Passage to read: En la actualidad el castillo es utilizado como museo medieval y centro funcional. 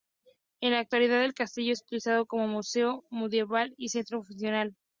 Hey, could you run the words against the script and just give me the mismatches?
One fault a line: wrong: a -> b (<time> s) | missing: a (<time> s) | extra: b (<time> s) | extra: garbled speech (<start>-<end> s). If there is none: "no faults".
no faults